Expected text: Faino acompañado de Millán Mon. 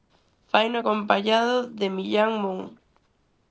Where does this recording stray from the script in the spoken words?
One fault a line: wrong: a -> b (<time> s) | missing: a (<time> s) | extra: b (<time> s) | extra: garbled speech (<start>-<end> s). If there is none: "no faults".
no faults